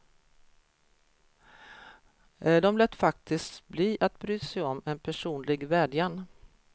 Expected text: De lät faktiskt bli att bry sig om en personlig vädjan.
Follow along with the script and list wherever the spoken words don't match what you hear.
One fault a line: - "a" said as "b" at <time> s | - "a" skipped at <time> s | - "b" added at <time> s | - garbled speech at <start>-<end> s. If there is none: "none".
none